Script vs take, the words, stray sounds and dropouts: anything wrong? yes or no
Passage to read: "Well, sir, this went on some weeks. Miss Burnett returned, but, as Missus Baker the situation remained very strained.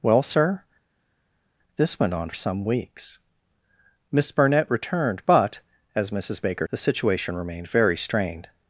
no